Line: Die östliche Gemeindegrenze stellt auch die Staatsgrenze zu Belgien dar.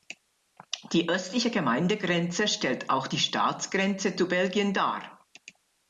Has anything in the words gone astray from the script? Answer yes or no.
no